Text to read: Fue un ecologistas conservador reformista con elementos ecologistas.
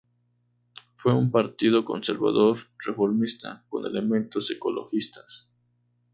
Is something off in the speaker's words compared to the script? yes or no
yes